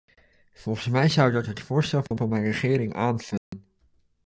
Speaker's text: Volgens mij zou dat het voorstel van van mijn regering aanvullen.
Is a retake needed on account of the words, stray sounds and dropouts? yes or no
yes